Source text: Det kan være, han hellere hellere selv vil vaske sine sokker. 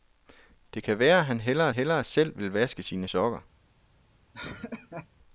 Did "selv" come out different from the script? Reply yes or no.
no